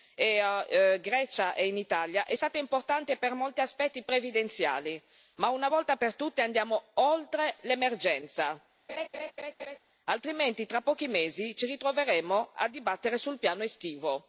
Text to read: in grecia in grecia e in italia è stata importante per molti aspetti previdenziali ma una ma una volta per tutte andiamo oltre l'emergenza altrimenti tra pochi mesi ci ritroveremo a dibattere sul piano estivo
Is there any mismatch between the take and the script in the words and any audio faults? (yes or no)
yes